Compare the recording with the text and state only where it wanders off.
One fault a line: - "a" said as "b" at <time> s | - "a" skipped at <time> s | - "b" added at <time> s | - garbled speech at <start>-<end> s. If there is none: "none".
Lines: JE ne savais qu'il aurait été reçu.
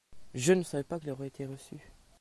- "pas" added at 0.8 s